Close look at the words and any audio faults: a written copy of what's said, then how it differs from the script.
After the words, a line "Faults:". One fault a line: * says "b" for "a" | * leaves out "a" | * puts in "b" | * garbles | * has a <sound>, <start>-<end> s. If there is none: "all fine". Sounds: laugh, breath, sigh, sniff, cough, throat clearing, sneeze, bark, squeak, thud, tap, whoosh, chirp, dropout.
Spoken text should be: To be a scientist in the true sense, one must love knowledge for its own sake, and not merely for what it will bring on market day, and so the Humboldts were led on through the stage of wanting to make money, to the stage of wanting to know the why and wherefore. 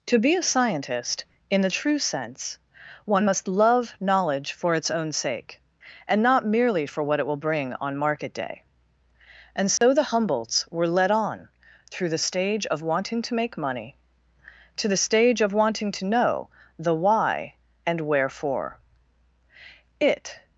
To be a scientist in the true sense, one must love knowledge for its own sake, and not merely for what it will bring on market day, and so the Humboldts were led on through the stage of wanting to make money, to the stage of wanting to know the why and wherefore. It
Faults:
* has a dropout, 9.8-9.8 s
* puts in "It"